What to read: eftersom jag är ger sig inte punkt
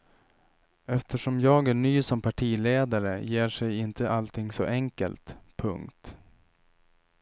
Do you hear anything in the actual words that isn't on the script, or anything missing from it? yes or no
yes